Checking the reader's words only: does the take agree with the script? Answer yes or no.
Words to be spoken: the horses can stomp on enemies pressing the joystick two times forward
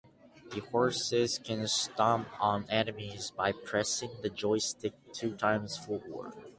no